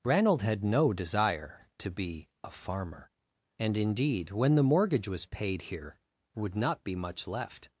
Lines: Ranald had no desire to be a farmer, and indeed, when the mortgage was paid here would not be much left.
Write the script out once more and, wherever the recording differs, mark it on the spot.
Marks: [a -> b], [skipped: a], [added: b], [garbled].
Ranald had no desire to be a farmer, and indeed, when the mortgage was paid here would not be much left.